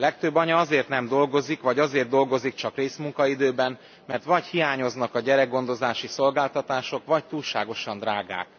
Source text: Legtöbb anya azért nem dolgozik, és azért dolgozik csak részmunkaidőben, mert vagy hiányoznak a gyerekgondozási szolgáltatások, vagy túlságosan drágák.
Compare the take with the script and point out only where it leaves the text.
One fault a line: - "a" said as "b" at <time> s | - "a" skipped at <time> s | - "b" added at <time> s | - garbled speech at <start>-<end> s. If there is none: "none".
- "és" said as "vagy" at 1.6 s